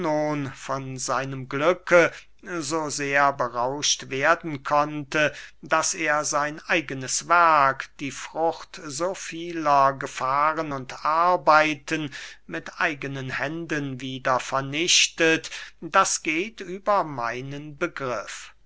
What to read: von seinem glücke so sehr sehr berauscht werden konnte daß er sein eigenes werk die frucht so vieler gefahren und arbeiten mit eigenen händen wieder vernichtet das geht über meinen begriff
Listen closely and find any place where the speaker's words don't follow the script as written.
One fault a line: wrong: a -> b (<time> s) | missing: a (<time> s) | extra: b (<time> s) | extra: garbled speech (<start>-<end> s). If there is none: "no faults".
missing: sehr (3.3 s)